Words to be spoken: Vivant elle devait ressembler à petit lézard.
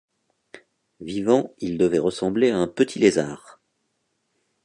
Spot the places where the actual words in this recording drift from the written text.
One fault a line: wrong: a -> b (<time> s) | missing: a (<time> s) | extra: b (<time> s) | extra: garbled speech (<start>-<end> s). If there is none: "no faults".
wrong: elle -> il (1.6 s)
extra: un (2.6 s)